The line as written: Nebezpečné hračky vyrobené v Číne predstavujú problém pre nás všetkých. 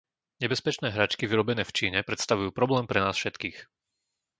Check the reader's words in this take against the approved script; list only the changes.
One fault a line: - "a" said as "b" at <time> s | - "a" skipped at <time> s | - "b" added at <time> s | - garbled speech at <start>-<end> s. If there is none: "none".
none